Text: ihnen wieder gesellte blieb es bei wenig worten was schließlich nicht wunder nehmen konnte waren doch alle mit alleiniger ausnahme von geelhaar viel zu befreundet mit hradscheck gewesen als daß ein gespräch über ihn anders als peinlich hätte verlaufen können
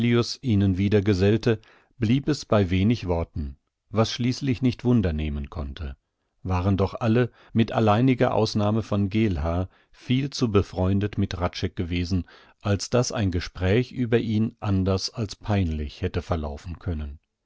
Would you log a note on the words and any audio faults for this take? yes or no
no